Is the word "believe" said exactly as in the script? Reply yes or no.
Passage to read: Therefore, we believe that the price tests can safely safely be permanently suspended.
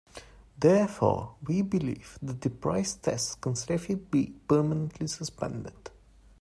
yes